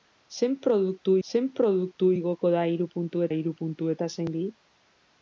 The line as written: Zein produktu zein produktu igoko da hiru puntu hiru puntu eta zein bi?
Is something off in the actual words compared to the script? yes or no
no